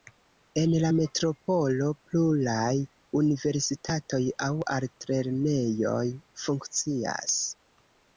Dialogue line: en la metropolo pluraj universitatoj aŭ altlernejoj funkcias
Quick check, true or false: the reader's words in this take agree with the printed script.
true